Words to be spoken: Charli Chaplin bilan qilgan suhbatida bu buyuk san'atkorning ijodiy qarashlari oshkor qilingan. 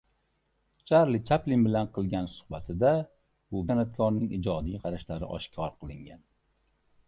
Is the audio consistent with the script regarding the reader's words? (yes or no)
no